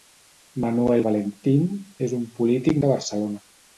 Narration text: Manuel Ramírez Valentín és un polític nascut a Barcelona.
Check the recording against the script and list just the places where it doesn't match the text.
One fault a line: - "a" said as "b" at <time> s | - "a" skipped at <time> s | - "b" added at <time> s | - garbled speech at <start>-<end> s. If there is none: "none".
- "Ramírez" skipped at 1.0 s
- "nascut" skipped at 2.8 s